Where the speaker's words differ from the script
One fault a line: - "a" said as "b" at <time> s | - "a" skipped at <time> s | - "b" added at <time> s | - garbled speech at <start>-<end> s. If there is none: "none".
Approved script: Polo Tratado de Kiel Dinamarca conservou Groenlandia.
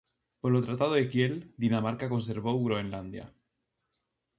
none